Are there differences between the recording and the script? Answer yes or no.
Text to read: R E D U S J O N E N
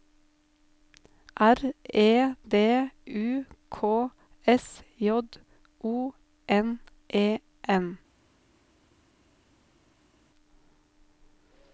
yes